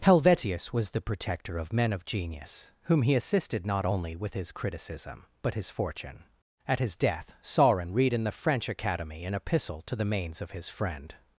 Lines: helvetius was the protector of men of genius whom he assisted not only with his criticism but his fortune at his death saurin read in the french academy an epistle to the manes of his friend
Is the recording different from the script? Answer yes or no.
no